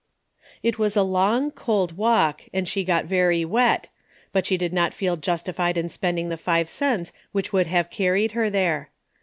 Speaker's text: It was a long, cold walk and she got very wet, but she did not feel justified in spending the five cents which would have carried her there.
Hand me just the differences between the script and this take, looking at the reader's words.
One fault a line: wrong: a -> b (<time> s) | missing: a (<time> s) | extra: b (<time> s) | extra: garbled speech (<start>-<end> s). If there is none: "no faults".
no faults